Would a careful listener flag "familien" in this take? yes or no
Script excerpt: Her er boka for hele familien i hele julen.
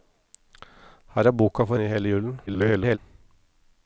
yes